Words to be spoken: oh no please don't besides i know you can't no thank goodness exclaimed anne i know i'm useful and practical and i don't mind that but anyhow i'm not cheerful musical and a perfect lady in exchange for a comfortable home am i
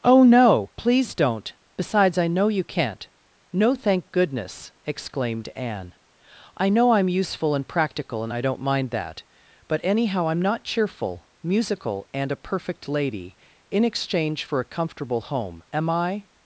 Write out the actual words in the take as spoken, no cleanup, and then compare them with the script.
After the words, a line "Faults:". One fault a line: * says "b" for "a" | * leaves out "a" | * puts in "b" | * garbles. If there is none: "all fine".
oh no please don't besides i know you can't no thank goodness exclaimed anne i know i'm useful and practical and i don't mind that but anyhow i'm not cheerful musical and a perfect lady in exchange for a comfortable home am i
Faults:
all fine